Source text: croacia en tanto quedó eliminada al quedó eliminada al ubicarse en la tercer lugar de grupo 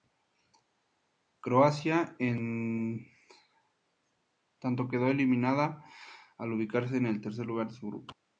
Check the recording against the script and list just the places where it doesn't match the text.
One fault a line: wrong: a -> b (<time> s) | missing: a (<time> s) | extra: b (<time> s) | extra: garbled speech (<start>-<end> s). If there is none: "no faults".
missing: quedó eliminada al (6.5 s)
wrong: la -> el (7.1 s)
extra: su (7.7 s)